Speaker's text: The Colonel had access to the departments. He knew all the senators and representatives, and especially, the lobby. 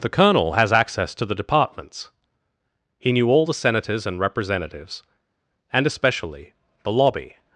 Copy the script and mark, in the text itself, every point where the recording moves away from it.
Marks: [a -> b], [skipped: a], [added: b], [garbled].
The Colonel [had -> has] access to the departments. He knew all the senators and representatives, and especially, the lobby.